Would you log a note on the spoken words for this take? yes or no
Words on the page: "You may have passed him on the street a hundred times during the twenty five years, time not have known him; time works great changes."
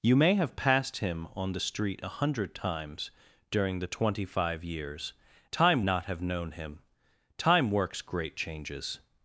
no